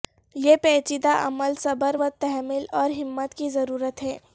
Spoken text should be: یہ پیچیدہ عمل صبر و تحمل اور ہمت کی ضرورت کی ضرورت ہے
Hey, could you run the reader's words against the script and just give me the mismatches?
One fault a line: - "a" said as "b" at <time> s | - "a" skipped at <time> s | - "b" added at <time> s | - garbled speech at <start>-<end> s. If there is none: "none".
- "کی ضرورت" skipped at 4.0 s